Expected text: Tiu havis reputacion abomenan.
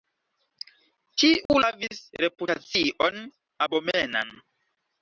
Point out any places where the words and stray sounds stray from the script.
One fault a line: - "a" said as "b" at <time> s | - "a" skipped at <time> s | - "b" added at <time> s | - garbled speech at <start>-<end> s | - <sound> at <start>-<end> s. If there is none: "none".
- dropout at 1.5-1.5 s